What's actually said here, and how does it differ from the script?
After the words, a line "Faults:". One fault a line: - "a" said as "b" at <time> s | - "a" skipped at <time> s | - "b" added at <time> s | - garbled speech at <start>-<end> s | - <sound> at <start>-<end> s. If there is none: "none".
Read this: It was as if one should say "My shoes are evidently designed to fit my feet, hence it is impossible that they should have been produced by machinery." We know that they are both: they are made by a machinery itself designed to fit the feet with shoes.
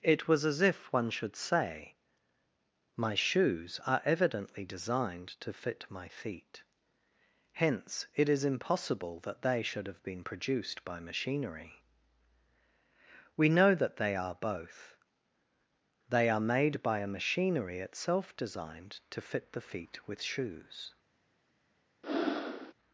It was as if one should say "My shoes are evidently designed to fit my feet, hence it is impossible that they should have been produced by machinery." We know that they are both: they are made by a machinery itself designed to fit the feet with shoes.
Faults:
- breath at 22.0-22.7 s